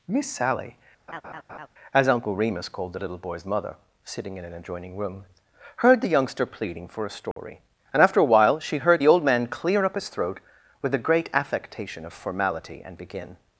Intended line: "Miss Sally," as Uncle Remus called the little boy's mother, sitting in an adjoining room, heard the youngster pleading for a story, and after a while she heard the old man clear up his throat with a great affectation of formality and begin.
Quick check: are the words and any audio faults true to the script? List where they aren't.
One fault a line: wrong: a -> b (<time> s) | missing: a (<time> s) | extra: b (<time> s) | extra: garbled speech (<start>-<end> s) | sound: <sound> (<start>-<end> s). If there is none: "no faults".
sound: laugh (1.1-1.7 s)
sound: dropout (7.3-7.4 s)